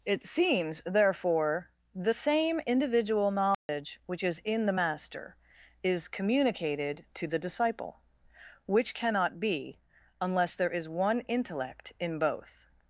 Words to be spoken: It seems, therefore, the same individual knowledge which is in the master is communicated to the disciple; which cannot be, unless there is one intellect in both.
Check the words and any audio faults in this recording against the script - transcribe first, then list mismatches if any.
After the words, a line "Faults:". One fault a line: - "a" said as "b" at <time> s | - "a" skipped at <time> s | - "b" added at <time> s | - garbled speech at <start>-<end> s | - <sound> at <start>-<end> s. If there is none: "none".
It seems, therefore, the same individual knowledge which is in the master is communicated to the disciple; which cannot be, unless there is one intellect in both.
Faults:
- dropout at 3.5-3.7 s